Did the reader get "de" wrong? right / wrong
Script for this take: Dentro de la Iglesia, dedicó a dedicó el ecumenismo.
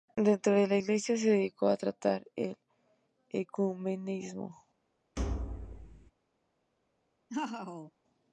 right